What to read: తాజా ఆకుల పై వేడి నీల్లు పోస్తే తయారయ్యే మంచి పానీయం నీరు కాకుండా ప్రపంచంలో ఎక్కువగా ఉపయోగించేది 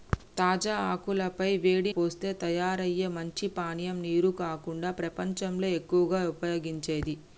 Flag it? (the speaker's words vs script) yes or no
yes